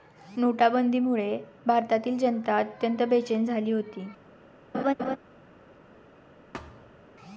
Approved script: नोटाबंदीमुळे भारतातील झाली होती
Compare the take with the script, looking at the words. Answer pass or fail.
fail